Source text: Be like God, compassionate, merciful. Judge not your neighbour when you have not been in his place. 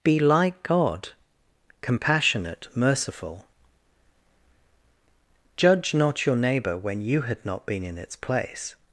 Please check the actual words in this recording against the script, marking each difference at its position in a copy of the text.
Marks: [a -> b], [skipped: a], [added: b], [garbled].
Be like God, compassionate, merciful. Judge not your neighbour when you [have -> had] not been in [his -> its] place.